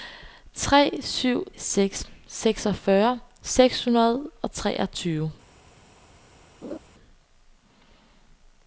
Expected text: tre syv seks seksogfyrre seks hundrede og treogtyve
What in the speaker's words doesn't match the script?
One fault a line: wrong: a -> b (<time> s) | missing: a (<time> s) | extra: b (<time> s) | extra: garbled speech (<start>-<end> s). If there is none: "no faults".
no faults